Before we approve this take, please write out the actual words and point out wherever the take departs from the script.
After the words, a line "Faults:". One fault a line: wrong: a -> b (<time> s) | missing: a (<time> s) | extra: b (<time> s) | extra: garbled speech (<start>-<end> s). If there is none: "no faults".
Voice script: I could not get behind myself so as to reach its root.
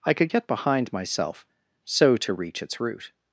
I could get behind myself so to reach its root.
Faults:
missing: not (0.3 s)
missing: as (2.2 s)